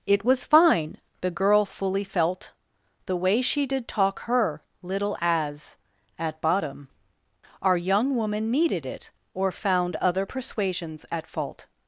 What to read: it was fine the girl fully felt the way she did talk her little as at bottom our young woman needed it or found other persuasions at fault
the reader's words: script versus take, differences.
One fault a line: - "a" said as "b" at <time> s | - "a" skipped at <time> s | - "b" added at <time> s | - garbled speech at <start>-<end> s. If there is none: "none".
none